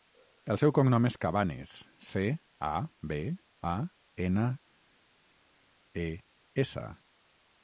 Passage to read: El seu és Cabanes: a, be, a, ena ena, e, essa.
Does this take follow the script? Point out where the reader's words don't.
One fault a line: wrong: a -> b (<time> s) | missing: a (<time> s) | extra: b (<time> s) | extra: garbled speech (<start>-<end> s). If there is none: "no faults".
extra: cognom (0.8 s)
extra: ce (2.1 s)
missing: ena (4.5 s)